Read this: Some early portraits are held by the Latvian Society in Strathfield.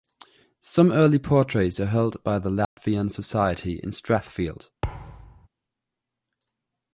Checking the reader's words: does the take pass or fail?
pass